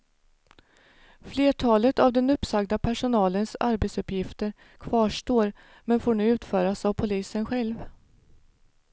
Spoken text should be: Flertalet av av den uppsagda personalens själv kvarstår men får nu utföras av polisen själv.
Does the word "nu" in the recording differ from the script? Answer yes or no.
no